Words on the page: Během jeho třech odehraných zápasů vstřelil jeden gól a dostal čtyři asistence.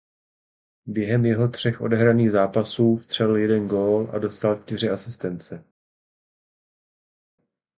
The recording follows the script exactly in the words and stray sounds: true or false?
true